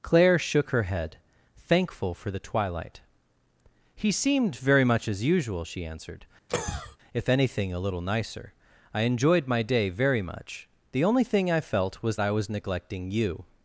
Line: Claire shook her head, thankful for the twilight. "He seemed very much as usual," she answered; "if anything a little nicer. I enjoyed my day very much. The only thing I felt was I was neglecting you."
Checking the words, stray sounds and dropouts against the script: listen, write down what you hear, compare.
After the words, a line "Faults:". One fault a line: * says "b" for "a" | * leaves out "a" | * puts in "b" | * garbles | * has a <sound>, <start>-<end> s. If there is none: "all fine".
Claire shook her head, thankful for the twilight. "He seemed very much as usual," she answered; "if anything a little nicer. I enjoyed my day very much. The only thing I felt was I was neglecting you."
Faults:
* has a cough, 6.5-7.0 s